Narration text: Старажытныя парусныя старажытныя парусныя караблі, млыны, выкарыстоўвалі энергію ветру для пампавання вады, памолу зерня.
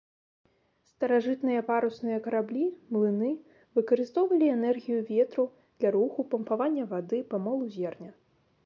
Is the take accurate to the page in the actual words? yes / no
no